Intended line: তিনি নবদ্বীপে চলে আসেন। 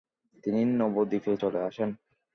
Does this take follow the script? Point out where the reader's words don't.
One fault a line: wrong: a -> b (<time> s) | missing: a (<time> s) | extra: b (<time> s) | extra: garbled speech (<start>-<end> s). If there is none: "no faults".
no faults